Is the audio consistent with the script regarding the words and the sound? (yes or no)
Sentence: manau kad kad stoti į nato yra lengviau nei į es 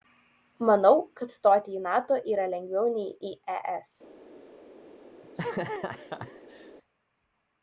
no